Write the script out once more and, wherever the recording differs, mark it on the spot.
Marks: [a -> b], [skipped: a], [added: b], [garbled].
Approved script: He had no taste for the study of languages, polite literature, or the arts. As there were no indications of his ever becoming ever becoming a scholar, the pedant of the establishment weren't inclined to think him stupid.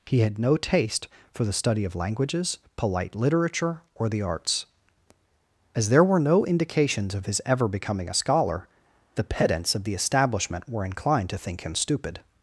He had no taste for the study of languages, polite literature, or the arts. As there were no indications of his ever becoming [skipped: ever becoming] a scholar, the [pedant -> pedants] of the establishment [weren't -> were] inclined to think him stupid.